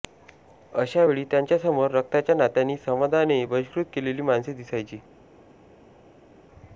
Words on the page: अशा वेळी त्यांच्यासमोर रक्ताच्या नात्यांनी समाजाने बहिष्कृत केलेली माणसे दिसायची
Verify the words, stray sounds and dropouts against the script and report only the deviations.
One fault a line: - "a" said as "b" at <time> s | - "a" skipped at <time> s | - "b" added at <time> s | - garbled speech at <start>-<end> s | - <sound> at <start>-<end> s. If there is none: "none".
none